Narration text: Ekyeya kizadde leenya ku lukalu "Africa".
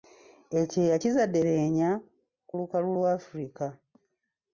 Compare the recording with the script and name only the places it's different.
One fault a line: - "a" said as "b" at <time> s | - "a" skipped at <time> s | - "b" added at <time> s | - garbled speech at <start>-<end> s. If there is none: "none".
- "lwa" added at 2.9 s